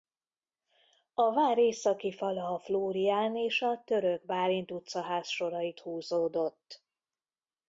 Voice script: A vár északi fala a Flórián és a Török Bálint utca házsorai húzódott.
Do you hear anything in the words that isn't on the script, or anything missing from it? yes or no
no